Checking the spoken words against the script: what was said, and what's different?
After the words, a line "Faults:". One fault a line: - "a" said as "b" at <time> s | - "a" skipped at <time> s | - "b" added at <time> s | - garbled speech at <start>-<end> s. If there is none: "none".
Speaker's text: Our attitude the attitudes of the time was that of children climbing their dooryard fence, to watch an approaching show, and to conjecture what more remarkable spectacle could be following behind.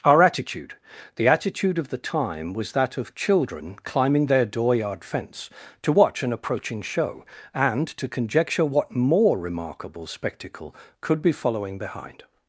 Our attitude the attitude of the time was that of children climbing their dooryard fence, to watch an approaching show, and to conjecture what more remarkable spectacle could be following behind.
Faults:
- "attitudes" said as "attitude" at 1.3 s